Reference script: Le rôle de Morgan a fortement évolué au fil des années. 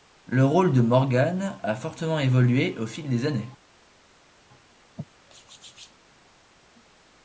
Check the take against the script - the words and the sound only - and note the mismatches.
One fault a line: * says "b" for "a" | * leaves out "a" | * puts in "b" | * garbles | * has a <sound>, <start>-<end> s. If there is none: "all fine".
all fine